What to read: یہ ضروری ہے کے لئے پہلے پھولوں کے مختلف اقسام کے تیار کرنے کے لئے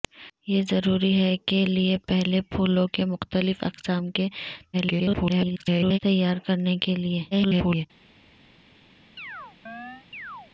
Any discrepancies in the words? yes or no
yes